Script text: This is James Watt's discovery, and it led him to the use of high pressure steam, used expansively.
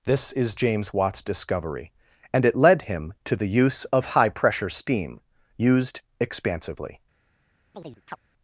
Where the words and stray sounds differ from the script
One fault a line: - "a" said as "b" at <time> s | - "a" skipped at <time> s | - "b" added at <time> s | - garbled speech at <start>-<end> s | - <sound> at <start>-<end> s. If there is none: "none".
- chirp at 7.7-8.2 s